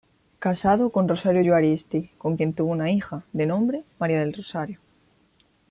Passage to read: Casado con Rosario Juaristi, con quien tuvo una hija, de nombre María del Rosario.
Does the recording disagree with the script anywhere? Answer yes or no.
no